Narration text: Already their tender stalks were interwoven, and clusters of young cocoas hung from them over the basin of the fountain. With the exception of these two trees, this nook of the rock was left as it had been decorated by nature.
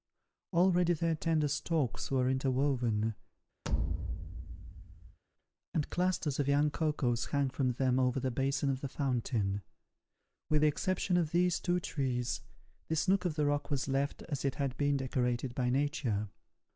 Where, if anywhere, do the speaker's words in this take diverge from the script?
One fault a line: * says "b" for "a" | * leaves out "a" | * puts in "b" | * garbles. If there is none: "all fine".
all fine